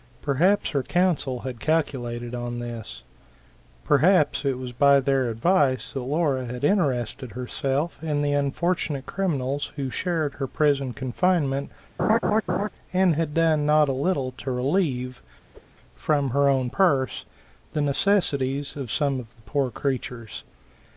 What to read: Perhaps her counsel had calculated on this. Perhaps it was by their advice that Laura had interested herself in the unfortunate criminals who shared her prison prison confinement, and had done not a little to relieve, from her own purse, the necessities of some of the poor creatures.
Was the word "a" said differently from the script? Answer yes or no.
no